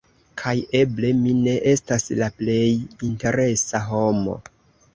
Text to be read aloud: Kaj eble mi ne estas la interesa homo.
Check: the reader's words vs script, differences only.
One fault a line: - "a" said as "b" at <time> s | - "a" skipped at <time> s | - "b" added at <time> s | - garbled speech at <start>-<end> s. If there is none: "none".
- "plej" added at 2.4 s